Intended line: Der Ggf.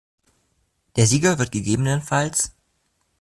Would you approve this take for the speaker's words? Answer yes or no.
no